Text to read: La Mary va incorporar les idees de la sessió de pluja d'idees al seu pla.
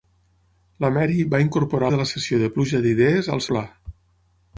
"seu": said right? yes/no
no